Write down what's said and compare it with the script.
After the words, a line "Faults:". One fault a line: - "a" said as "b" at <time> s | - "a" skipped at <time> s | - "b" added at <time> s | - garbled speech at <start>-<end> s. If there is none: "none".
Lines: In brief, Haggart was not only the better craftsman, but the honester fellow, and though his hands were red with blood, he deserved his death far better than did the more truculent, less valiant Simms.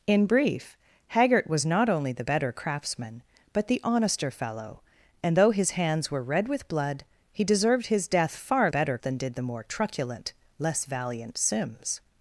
In brief, Haggart was not only the better craftsman, but the honester fellow, and though his hands were red with blood, he deserved his death far better than did the more truculent, less valiant Simms.
Faults:
none